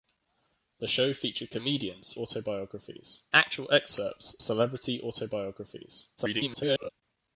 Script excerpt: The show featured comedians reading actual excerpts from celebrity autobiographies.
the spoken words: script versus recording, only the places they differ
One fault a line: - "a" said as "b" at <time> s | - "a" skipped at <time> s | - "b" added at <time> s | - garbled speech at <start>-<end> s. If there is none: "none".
- "reading" said as "autobiographies" at 2.1 s
- "from" skipped at 4.4 s
- garbled speech at 6.2-6.9 s